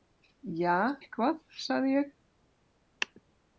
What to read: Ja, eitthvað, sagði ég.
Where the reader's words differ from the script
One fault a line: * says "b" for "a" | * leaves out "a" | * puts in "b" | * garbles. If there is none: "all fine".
all fine